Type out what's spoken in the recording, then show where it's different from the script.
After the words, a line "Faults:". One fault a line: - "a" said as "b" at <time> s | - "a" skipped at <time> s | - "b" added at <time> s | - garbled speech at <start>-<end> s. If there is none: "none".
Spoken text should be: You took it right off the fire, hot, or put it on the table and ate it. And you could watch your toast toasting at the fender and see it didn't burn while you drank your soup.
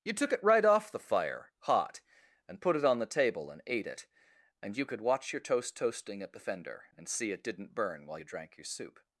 You took it right off the fire, hot, and put it on the table and ate it. And you could watch your toast toasting at the fender and see it didn't burn while you drank your soup.
Faults:
- "or" said as "and" at 2.5 s